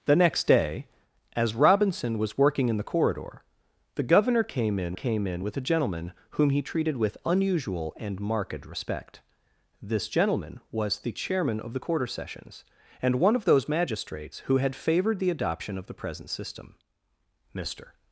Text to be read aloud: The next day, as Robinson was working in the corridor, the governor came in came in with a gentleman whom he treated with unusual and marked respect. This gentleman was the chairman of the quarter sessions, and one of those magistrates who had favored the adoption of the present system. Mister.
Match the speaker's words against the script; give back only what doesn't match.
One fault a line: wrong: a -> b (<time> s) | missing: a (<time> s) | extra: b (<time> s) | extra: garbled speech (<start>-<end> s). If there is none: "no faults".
no faults